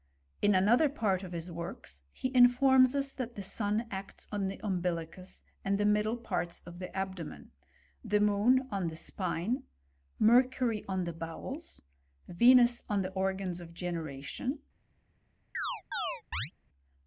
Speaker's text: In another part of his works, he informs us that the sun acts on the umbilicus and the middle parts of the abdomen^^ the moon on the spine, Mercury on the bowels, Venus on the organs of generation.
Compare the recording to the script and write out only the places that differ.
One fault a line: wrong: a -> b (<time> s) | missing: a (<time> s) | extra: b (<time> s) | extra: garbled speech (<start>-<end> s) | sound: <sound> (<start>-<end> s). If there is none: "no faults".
sound: chirp (15.5-16.5 s)